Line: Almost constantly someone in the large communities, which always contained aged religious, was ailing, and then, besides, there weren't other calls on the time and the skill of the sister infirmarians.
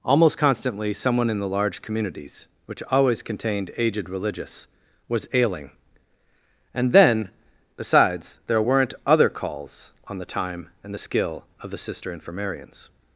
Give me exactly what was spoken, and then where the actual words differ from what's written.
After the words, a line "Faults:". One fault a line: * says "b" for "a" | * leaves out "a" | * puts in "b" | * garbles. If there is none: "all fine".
Almost constantly someone in the large communities, which always contained aged religious, was ailing, and then, besides, there weren't other calls on the time and the skill of the sister infirmarians.
Faults:
all fine